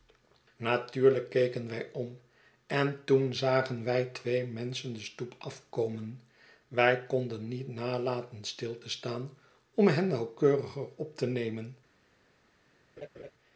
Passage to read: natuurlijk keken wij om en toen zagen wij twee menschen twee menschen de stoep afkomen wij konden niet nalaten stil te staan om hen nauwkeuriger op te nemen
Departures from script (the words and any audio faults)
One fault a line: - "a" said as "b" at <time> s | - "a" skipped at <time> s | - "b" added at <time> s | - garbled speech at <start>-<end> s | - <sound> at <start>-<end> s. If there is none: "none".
- "twee menschen" skipped at 4.9 s
- laugh at 13.0-13.3 s